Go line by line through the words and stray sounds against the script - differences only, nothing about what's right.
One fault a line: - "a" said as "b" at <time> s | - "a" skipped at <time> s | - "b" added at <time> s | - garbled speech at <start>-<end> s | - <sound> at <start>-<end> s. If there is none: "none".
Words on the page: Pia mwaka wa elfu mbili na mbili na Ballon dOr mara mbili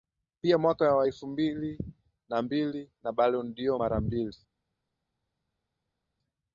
none